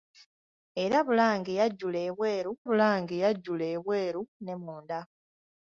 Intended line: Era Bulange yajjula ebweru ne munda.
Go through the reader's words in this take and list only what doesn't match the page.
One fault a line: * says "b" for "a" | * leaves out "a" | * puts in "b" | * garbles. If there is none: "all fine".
* puts in "Bulange yajjula ebweru"